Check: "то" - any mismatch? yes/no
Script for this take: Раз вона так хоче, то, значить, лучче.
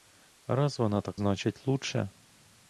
yes